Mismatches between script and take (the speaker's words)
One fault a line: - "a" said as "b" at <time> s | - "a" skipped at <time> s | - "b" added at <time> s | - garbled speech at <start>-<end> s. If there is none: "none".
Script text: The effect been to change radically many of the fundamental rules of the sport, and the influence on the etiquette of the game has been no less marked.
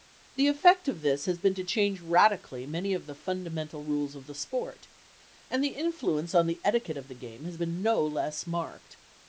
- "of this has" added at 0.9 s